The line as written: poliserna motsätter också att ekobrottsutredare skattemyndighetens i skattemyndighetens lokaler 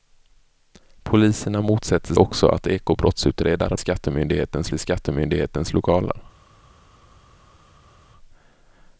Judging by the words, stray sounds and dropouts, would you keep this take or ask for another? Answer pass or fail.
pass